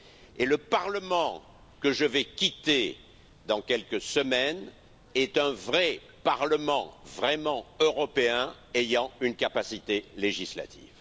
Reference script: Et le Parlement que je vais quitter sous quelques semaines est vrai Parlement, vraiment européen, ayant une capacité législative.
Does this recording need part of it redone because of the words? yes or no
yes